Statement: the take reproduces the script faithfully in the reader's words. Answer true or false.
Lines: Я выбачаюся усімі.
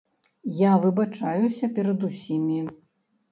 false